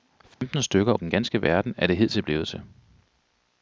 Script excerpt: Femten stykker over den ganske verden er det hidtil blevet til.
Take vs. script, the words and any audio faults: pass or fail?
fail